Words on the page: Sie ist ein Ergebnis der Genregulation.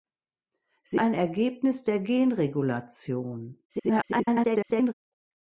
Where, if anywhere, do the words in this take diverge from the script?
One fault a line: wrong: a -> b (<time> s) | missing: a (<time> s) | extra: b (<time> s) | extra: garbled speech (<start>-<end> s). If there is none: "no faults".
missing: ist (1.0 s)
extra: garbled speech (3.7-4.9 s)